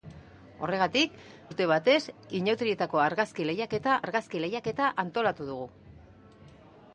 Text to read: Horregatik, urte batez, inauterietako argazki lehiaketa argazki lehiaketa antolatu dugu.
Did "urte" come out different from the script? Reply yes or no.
no